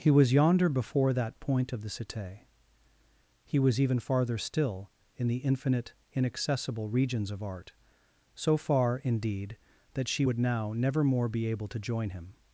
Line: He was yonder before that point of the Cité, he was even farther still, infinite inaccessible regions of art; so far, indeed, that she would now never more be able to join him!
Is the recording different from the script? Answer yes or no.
yes